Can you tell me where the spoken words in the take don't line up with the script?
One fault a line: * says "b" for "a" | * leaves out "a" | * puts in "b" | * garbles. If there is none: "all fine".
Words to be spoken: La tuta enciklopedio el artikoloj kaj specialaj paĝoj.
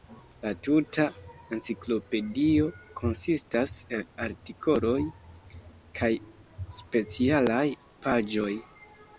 * puts in "konsistas"